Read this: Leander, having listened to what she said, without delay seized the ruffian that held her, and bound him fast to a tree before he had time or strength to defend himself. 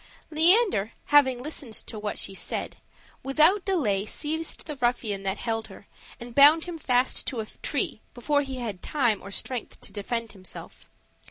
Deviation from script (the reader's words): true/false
false